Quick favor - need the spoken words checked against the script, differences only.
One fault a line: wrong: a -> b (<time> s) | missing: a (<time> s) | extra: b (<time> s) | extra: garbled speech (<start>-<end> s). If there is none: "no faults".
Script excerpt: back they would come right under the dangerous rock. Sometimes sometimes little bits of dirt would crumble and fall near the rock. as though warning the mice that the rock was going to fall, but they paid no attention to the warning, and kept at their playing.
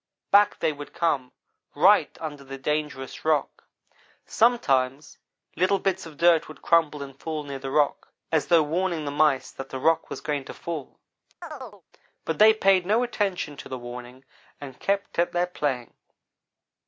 missing: sometimes (5.2 s)